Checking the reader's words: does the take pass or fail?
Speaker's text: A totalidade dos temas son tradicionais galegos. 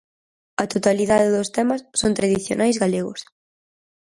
pass